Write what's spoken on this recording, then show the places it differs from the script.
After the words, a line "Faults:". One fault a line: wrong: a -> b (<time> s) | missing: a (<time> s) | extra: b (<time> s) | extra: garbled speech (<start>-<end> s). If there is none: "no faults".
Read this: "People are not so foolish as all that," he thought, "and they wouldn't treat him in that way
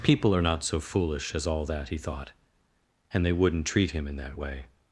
"People are not so foolish as all that," he thought, "and they wouldn't treat him in that way
Faults:
no faults